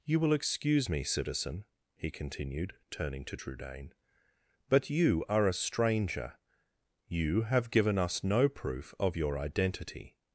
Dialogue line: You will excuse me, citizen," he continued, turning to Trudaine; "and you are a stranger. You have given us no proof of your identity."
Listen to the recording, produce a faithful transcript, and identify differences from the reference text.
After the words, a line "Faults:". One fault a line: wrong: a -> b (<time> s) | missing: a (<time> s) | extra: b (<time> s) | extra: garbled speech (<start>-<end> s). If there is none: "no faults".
You will excuse me, citizen," he continued, turning to Trudaine; "but you are a stranger. You have given us no proof of your identity."
Faults:
wrong: and -> but (4.7 s)